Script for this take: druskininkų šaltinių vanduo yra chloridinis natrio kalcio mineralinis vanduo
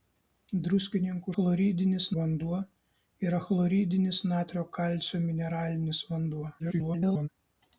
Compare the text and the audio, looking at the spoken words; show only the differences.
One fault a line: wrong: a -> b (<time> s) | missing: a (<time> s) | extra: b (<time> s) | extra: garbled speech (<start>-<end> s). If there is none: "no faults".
wrong: šaltinių -> chloridinis (1.3 s)
extra: garbled speech (6.6-7.3 s)